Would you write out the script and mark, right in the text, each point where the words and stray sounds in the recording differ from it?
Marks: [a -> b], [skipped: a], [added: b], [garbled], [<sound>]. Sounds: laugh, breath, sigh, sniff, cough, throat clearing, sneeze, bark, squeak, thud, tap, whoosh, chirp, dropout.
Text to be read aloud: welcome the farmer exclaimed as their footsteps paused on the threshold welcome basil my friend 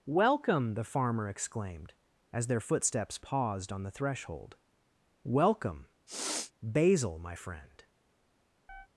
welcome the farmer exclaimed as their footsteps paused on the threshold welcome [sniff] basil my friend [chirp]